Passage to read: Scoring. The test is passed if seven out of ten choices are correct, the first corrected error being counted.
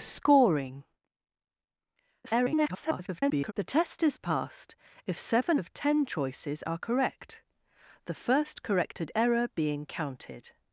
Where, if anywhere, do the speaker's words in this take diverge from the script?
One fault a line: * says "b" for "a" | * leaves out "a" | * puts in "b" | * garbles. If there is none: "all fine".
* garbles
* leaves out "out"